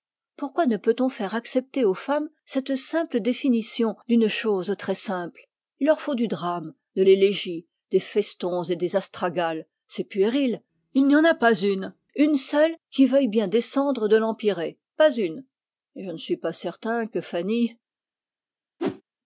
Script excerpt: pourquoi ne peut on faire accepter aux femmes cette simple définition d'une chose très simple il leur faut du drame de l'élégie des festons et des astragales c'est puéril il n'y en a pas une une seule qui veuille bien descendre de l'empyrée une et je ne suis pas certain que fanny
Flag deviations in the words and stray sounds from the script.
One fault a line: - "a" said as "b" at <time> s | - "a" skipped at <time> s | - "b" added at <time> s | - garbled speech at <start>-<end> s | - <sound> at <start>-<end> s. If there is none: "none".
- "pas" added at 15.0 s
- whoosh at 18.8-19.0 s